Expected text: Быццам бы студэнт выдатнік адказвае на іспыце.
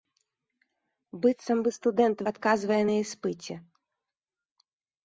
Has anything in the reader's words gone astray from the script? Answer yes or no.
yes